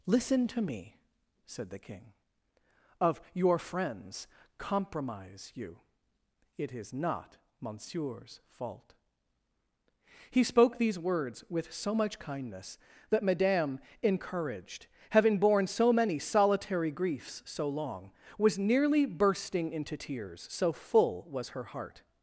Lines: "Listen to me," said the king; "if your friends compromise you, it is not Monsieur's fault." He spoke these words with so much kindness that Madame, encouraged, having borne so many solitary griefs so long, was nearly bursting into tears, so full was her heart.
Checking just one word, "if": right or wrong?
wrong